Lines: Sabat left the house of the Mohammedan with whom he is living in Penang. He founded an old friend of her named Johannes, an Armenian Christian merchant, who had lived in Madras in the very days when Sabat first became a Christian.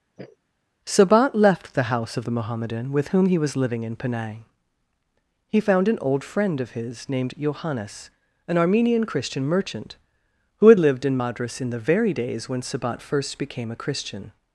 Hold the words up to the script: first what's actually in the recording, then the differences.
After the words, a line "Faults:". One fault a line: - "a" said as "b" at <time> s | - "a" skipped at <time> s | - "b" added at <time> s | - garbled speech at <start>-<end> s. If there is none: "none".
Sabat left the house of the Mohammedan with whom he was living in Penang. He found an old friend of his named Johannes, an Armenian Christian merchant, who had lived in Madras in the very days when Sabat first became a Christian.
Faults:
- "is" said as "was" at 3.4 s
- "founded" said as "found" at 5.6 s
- "her" said as "his" at 6.7 s